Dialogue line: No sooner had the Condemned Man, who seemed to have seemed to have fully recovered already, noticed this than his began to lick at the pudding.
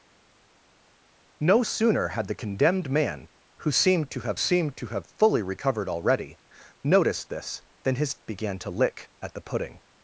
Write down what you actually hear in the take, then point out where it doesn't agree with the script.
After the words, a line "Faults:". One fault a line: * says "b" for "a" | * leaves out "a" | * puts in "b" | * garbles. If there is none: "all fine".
No sooner had the Condemned Man, who seemed to have seemed to have fully recovered already, noticed this than his began to lick at the pudding.
Faults:
all fine